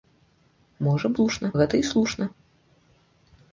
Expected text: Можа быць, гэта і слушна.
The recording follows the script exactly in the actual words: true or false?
false